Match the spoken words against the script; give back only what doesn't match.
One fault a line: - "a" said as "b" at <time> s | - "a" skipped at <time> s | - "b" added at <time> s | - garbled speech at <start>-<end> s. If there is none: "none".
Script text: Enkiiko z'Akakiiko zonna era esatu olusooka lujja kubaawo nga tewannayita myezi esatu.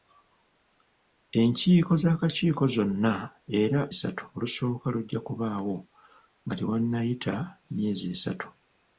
none